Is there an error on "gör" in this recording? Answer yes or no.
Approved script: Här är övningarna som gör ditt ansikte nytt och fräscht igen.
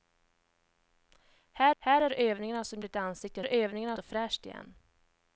yes